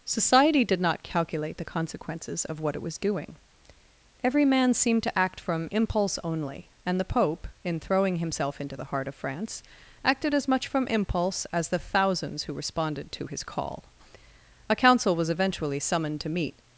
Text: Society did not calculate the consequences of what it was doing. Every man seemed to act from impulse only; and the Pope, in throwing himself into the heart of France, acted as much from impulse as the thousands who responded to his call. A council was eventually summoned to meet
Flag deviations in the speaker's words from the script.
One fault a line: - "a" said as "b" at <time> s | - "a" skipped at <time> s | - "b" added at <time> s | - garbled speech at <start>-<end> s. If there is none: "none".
none